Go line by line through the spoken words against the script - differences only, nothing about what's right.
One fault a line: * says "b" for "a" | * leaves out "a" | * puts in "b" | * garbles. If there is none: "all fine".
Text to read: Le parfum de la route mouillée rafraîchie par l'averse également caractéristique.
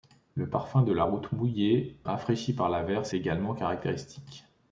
all fine